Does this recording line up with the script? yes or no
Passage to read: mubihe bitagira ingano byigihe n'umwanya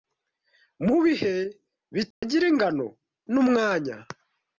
no